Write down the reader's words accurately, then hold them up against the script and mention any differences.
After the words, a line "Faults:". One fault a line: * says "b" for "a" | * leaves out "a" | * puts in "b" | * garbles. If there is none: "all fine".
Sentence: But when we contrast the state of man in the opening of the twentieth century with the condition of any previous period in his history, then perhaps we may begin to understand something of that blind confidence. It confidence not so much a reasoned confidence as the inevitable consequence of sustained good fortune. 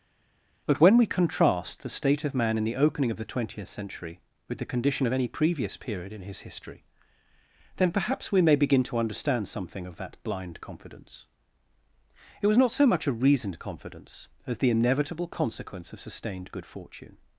But when we contrast the state of man in the opening of the twentieth century with the condition of any previous period in his history, then perhaps we may begin to understand something of that blind confidence. It was not so much a reasoned confidence as the inevitable consequence of sustained good fortune.
Faults:
* says "was" for "confidence"